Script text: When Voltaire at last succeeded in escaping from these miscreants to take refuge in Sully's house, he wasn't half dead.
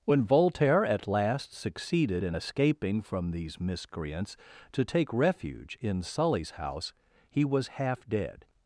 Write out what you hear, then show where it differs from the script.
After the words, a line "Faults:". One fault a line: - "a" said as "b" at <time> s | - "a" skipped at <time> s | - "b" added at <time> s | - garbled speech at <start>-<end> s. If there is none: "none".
When Voltaire at last succeeded in escaping from these miscreants to take refuge in Sully's house, he was half dead.
Faults:
- "wasn't" said as "was" at 7.4 s